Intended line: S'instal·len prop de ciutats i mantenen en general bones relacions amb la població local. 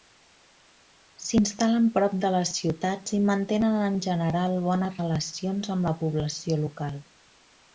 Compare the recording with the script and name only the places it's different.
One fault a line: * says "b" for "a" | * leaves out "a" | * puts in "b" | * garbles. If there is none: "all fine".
* puts in "les"